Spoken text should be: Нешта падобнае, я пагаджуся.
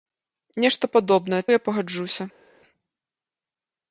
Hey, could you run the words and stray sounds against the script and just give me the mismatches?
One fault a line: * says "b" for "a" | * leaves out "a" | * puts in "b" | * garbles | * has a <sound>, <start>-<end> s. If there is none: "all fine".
all fine